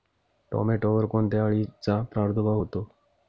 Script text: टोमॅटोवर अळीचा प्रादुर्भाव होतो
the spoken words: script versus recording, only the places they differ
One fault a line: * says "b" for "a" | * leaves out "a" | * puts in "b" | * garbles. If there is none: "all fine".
* puts in "कोणत्या"